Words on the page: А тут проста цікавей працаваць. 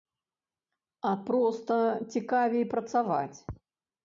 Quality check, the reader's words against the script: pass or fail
fail